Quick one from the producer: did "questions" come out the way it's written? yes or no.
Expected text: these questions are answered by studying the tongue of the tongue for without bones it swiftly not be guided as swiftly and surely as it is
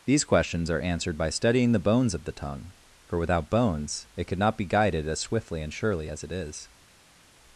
yes